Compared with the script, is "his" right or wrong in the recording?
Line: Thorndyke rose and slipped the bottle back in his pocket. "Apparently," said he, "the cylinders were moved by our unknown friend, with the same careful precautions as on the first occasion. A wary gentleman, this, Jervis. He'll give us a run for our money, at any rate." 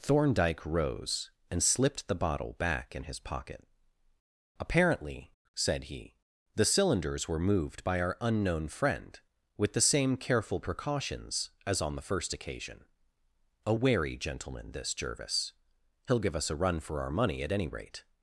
right